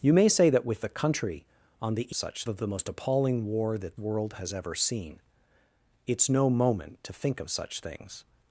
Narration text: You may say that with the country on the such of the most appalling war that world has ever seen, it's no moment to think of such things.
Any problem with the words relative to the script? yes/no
no